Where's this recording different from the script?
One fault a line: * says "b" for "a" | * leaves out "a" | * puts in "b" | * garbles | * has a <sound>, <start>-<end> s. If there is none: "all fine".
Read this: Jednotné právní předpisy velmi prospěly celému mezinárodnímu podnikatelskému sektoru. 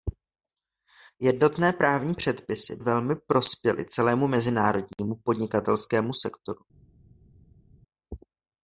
all fine